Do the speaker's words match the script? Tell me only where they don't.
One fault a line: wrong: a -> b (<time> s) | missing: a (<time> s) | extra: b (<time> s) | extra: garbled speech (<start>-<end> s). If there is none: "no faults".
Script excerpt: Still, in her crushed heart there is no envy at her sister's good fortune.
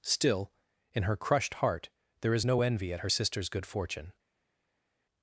no faults